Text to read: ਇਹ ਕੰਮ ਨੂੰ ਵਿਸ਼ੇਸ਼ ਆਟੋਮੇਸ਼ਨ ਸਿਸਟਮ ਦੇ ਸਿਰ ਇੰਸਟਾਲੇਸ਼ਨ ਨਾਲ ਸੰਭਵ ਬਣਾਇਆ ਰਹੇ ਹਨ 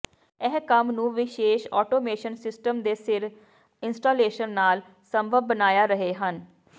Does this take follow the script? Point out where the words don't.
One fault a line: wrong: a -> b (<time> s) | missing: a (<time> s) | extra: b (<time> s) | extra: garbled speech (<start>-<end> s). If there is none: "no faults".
no faults